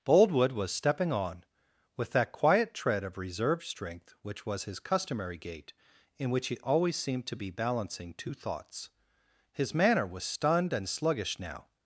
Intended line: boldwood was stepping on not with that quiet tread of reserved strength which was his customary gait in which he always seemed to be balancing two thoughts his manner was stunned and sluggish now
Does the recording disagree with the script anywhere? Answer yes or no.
yes